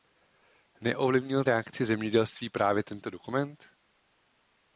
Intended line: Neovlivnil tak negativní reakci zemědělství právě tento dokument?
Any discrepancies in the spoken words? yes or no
yes